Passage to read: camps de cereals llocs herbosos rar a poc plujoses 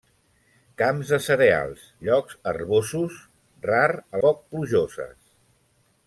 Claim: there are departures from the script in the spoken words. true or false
false